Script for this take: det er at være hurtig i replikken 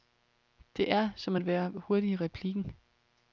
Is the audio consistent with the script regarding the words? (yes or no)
no